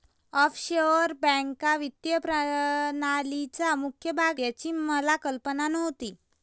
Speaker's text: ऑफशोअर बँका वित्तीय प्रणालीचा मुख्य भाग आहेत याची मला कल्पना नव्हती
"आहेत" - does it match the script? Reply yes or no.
no